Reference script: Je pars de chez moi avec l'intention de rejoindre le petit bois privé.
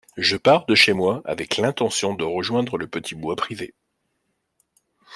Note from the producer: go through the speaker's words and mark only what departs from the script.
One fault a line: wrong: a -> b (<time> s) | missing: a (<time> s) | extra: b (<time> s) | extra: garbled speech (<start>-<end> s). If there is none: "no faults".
no faults